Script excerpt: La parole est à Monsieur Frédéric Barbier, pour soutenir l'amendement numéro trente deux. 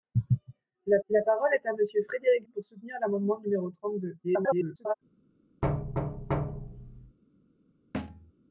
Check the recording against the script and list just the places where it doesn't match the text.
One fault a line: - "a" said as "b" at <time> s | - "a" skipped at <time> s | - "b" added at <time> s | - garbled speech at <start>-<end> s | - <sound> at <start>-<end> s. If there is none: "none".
- "la" added at 1.1 s
- "Barbier" skipped at 2.5 s
- garbled speech at 4.2-4.9 s
- thud at 5.6-7.2 s
- thud at 7.9-8.3 s